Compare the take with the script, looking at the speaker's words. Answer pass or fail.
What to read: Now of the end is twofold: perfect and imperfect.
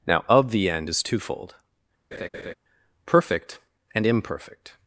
pass